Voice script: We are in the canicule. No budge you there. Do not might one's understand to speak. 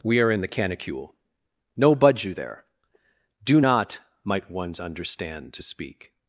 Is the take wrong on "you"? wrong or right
right